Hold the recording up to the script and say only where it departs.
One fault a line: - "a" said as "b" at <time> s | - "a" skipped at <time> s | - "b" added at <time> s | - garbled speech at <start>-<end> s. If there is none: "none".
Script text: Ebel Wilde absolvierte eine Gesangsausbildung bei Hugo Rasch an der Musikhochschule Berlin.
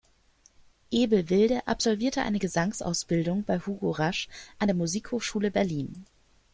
none